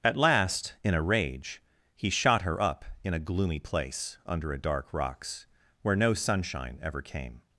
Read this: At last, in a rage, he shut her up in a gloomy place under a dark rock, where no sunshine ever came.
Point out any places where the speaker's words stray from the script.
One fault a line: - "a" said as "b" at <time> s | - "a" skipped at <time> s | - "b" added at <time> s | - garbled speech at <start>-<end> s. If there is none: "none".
- "shut" said as "shot" at 2.1 s
- "rock" said as "rocks" at 4.9 s